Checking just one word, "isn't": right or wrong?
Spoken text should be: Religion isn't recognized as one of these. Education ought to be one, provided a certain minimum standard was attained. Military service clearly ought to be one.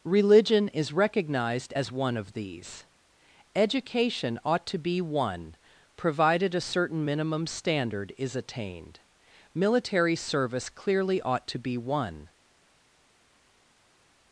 wrong